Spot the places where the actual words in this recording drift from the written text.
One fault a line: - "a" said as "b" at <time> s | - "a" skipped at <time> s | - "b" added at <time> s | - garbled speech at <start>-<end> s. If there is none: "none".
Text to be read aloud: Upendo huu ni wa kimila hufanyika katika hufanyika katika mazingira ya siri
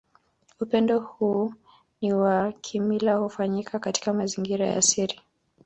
- "hufanyika katika" skipped at 4.1 s